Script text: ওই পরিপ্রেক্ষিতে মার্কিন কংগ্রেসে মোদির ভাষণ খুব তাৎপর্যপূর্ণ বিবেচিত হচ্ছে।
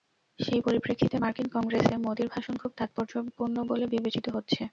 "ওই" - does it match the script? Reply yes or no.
no